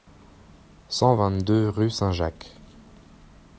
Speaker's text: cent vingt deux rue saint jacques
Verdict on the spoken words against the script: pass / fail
pass